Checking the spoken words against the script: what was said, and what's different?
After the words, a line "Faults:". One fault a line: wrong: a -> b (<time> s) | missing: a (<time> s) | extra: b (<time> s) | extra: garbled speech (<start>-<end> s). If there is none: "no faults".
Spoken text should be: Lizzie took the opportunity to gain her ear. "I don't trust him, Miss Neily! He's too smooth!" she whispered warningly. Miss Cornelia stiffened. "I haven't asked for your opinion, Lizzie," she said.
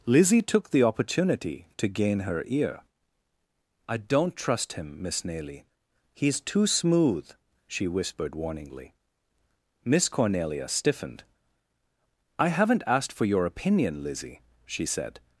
Lizzie took the opportunity to gain her ear. "I don't trust him, Miss Neily! He's too smooth!" she whispered warningly. Miss Cornelia stiffened. "I haven't asked for your opinion, Lizzie," she said.
Faults:
no faults